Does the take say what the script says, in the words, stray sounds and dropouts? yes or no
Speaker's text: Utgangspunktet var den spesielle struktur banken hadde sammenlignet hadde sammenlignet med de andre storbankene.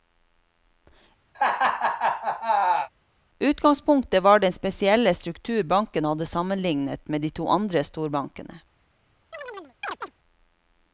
no